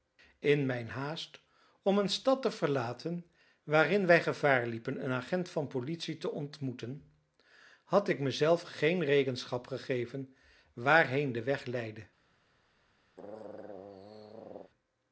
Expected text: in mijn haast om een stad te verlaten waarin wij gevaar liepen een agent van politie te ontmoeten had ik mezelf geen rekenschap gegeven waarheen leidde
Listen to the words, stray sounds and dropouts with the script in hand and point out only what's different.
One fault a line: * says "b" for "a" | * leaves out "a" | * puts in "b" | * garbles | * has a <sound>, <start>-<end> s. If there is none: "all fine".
* puts in "de weg"
* has a throat clearing, 13.2-14.7 s